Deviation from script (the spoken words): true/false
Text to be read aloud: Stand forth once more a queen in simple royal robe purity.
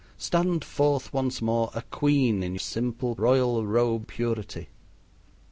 false